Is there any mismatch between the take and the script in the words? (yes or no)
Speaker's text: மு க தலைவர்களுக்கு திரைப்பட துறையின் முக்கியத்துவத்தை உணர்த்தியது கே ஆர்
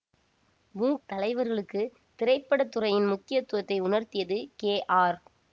yes